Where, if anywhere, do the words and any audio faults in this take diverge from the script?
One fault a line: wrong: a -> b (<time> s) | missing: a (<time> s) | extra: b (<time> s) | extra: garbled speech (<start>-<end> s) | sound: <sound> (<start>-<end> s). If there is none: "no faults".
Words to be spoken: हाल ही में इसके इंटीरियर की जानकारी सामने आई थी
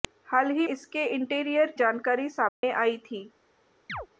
missing: में (0.7 s)
missing: की (1.7 s)
sound: dropout (2.5-2.6 s)
sound: chirp (3.9-4.1 s)